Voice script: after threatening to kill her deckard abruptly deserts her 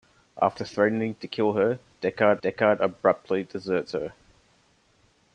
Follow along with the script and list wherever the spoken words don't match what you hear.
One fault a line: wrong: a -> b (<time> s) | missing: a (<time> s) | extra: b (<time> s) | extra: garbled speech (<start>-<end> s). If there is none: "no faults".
extra: deckard (2.4 s)